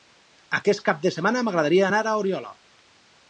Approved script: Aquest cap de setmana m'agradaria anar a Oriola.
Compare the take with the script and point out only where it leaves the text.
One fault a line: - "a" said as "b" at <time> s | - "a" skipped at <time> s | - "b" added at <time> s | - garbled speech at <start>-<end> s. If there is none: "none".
none